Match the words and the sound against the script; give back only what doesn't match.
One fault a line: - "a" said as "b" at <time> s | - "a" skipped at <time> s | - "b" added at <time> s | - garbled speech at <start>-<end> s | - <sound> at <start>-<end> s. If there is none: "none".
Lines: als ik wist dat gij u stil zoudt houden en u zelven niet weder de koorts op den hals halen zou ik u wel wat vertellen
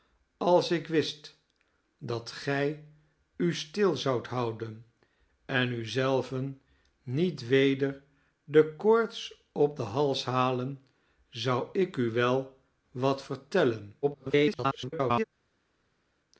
- garbled speech at 14.0-15.2 s